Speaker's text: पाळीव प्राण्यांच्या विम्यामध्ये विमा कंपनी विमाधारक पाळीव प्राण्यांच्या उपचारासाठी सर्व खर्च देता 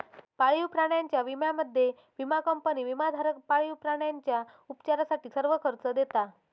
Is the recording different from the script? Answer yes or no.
no